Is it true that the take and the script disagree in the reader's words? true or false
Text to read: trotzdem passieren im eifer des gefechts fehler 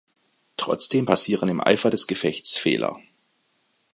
false